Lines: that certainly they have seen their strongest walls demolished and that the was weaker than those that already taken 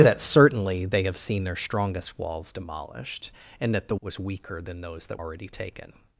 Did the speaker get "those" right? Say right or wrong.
right